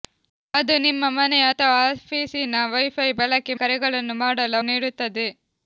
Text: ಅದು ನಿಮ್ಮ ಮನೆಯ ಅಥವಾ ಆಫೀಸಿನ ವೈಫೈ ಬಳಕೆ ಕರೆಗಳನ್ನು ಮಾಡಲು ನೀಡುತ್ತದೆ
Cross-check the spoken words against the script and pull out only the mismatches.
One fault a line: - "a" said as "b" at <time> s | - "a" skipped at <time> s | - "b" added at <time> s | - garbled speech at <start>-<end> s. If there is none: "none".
none